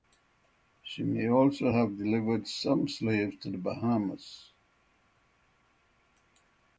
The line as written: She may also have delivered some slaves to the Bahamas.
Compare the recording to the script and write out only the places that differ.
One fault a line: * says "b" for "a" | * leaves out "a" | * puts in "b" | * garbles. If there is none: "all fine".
all fine